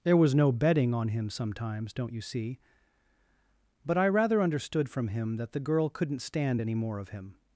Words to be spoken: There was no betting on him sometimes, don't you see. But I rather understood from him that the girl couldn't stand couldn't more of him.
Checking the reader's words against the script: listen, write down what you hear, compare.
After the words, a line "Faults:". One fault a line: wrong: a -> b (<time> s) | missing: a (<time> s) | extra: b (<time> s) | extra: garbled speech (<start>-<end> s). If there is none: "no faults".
There was no betting on him sometimes, don't you see. But I rather understood from him that the girl couldn't stand any more of him.
Faults:
wrong: couldn't -> any (6.6 s)